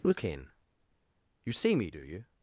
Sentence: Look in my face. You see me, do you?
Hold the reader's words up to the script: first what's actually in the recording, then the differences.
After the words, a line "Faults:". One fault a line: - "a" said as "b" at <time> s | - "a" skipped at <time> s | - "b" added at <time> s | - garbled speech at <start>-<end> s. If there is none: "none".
Look in. You see me, do you?
Faults:
- "my face" skipped at 0.5 s